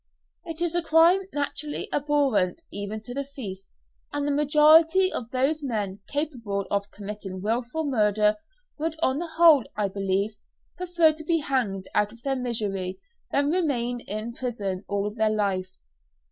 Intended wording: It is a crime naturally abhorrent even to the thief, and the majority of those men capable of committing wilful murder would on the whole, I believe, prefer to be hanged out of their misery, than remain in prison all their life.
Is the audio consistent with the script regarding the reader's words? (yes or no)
yes